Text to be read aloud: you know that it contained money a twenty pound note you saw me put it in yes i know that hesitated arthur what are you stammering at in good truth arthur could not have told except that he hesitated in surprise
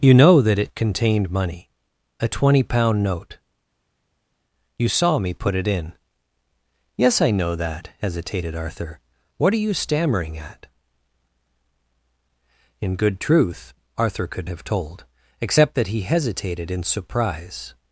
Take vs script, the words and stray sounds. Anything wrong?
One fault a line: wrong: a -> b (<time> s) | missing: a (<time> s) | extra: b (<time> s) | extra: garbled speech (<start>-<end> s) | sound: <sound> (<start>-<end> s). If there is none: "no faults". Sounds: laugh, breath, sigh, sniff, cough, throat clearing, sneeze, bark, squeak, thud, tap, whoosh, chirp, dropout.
missing: not (14.5 s)